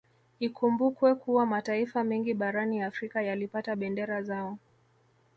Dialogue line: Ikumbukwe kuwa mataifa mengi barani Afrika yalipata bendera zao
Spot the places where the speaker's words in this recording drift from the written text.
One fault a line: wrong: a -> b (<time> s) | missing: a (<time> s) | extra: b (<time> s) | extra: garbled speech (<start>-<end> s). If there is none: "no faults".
no faults